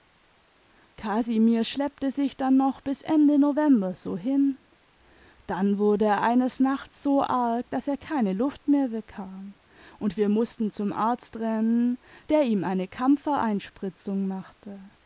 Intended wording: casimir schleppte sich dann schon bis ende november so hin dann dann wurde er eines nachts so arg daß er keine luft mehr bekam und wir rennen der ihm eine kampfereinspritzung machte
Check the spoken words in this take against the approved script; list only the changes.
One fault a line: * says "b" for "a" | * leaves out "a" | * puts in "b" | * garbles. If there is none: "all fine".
* says "noch" for "schon"
* leaves out "dann"
* puts in "mußten zum arzt"